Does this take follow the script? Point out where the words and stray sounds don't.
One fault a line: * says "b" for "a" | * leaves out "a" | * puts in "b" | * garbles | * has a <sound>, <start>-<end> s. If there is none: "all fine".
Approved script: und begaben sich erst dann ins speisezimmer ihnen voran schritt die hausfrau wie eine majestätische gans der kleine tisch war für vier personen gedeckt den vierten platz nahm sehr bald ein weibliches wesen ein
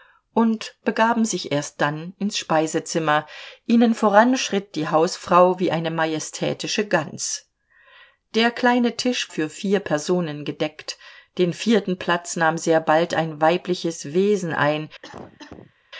* leaves out "war"
* has a cough, 15.0-15.7 s